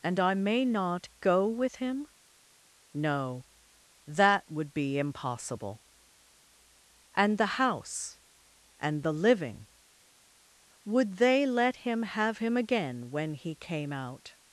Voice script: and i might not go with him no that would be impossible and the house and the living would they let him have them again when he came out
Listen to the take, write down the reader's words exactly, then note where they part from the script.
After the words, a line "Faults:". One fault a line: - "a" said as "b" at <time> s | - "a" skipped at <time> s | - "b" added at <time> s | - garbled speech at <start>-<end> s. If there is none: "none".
and i may not go with him no that would be impossible and the house and the living would they let him have him again when he came out
Faults:
- "might" said as "may" at 0.3 s
- "them" said as "him" at 12.4 s